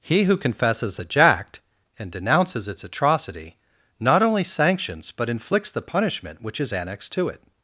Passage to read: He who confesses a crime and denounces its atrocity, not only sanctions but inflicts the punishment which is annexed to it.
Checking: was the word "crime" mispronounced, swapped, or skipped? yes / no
yes